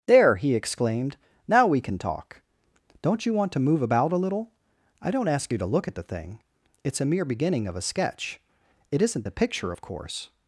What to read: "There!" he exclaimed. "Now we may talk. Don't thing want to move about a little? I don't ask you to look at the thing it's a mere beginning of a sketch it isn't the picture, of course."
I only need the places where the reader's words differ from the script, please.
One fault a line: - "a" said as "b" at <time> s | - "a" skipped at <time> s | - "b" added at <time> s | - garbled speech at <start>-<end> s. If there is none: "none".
- "may" said as "can" at 1.8 s
- "thing" said as "you" at 3.2 s